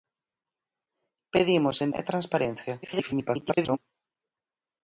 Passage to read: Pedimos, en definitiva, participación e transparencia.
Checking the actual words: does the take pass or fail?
fail